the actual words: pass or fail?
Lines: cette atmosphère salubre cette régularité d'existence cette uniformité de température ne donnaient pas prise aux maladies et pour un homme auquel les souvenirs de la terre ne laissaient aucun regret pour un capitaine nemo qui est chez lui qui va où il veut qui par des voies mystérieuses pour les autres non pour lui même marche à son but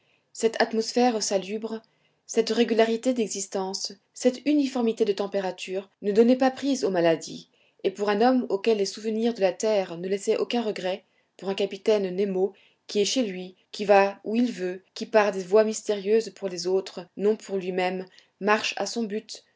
pass